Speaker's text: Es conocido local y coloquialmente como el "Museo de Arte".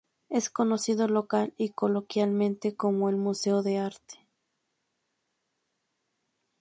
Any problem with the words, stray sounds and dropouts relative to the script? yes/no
no